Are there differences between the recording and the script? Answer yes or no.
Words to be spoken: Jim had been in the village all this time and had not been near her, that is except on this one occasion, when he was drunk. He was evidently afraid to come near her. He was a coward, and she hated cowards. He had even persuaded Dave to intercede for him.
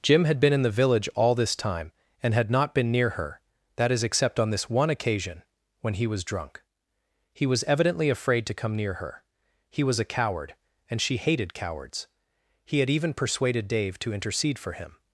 no